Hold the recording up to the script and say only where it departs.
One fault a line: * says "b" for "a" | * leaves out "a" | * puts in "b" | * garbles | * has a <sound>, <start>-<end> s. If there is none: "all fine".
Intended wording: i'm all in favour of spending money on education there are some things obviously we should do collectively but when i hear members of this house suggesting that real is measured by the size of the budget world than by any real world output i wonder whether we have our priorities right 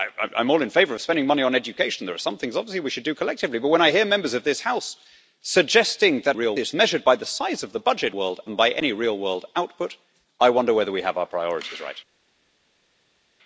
all fine